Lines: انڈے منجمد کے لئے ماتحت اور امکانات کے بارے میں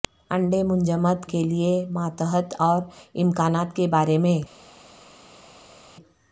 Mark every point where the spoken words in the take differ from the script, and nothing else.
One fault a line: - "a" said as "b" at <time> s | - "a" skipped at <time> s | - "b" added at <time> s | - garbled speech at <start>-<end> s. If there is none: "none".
none